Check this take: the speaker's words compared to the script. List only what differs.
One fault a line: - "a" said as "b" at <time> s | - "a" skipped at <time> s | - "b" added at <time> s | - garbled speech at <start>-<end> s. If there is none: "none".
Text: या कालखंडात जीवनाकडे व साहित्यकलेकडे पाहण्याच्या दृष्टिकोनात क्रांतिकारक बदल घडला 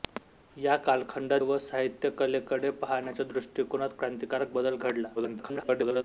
- "जीवनाकडे" skipped at 1.4 s
- garbled speech at 5.2-6.0 s